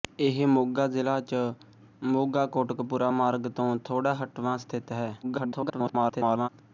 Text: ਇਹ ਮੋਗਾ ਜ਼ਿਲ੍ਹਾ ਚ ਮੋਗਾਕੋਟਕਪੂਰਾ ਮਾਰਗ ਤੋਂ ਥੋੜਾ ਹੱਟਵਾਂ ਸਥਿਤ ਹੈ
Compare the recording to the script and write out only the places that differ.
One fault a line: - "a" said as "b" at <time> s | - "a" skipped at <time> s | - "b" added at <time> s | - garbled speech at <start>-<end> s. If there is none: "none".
- garbled speech at 5.2-6.5 s